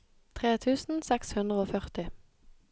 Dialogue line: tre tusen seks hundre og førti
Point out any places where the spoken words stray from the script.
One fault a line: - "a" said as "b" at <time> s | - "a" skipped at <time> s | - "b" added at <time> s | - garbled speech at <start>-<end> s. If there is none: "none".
none